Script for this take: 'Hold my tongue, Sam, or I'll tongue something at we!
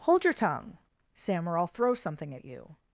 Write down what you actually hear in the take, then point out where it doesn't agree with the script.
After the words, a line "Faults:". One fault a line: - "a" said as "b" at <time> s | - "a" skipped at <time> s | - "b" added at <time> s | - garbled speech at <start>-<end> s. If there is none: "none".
'Hold your tongue, Sam, or I'll throw something at you!
Faults:
- "my" said as "your" at 0.2 s
- "tongue" said as "throw" at 1.7 s
- "we" said as "you" at 2.5 s